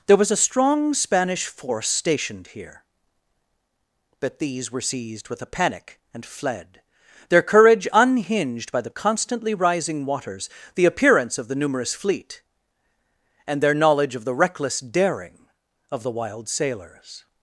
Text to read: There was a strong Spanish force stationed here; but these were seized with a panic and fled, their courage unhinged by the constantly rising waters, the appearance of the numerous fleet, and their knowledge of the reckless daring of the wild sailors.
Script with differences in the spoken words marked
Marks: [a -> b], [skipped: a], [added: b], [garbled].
There was a strong Spanish force stationed here; but these were seized with a panic and fled, their courage unhinged by the constantly rising waters, the appearance of the numerous fleet, and their knowledge of the reckless daring of the wild sailors.